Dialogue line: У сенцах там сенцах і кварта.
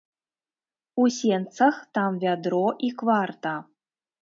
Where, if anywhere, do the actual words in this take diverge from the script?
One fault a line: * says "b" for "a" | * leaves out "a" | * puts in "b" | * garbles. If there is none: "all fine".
* says "вядро" for "сенцах"